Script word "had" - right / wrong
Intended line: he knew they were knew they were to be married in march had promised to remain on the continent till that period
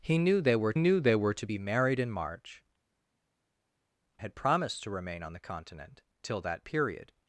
right